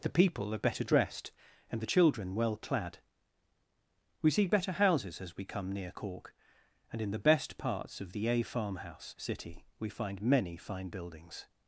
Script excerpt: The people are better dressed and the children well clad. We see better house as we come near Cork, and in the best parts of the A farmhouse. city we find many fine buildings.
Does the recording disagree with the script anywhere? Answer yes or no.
yes